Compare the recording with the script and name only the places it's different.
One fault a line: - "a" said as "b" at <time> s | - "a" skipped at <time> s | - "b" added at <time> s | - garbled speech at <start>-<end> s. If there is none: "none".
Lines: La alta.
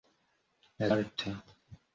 none